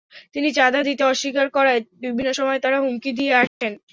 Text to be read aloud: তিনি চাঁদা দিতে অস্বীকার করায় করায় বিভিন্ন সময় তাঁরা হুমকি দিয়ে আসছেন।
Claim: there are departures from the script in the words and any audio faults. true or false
true